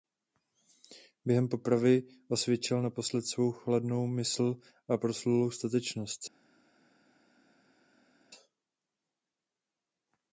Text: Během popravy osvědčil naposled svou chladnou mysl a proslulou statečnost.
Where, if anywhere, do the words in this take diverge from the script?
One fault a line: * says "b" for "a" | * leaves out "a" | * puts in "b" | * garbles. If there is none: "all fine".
all fine